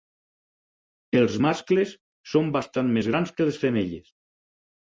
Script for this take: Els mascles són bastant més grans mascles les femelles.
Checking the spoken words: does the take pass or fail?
fail